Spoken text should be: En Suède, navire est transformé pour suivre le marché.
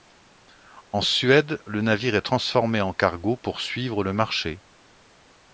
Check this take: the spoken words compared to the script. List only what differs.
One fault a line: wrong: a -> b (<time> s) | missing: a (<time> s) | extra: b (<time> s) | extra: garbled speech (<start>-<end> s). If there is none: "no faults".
extra: le (1.7 s)
extra: en cargo (2.8 s)